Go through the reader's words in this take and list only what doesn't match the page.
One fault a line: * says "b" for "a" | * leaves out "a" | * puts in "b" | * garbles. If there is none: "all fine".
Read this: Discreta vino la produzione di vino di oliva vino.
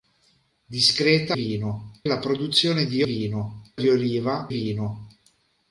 all fine